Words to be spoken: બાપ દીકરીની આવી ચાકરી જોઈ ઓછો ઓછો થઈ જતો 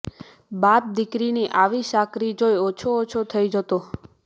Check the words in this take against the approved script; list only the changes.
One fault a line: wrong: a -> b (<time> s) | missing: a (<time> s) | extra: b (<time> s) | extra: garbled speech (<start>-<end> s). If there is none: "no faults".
no faults